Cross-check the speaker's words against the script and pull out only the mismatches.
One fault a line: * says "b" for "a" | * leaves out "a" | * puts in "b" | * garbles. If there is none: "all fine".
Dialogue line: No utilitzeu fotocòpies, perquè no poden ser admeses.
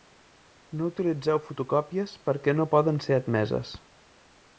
all fine